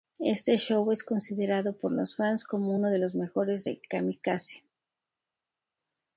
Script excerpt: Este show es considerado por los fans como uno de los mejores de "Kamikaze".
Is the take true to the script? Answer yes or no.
yes